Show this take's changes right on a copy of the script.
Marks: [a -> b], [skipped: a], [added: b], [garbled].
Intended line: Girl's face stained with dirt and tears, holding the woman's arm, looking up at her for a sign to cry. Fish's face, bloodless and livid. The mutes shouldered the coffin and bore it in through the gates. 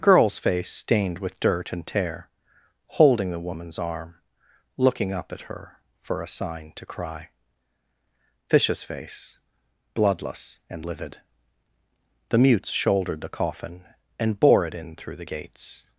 Girl's face stained with dirt and [tears, -> tear] holding the woman's arm, looking up at her for a sign to cry. Fish's face, bloodless and livid. The mutes shouldered the coffin and bore it in through the gates.